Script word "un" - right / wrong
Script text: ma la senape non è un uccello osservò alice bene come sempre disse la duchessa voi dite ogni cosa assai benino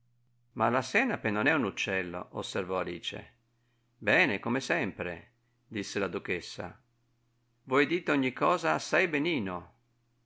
right